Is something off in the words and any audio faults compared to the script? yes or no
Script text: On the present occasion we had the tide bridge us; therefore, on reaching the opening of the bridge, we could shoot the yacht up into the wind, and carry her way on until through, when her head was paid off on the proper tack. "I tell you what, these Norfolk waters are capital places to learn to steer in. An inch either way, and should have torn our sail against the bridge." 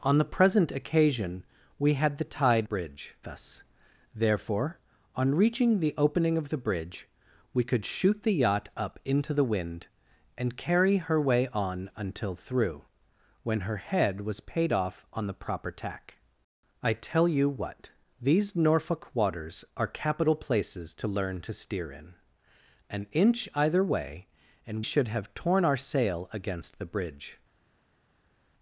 no